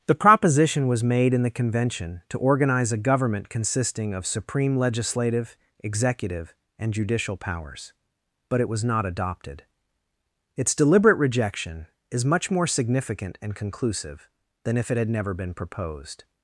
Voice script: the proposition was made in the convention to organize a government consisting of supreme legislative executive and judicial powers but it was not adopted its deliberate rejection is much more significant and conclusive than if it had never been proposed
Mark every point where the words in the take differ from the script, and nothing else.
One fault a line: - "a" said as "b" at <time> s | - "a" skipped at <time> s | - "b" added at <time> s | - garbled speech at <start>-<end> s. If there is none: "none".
none